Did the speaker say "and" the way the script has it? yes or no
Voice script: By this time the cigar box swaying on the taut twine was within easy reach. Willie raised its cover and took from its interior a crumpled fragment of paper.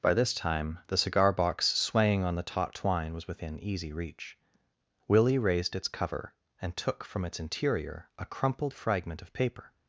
yes